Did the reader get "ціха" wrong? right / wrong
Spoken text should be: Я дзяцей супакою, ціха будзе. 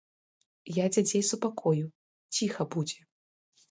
right